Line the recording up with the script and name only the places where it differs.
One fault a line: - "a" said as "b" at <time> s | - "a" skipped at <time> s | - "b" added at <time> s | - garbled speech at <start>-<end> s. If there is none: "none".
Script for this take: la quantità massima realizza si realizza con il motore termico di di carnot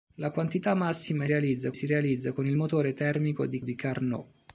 none